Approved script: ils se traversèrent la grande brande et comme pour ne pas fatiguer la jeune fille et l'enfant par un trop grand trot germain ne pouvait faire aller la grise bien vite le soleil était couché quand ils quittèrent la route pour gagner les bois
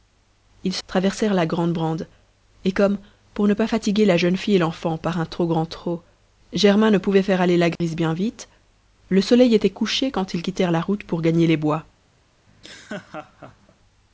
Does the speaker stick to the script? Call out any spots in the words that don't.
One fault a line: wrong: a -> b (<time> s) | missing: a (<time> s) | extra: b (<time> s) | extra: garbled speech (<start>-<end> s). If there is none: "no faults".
no faults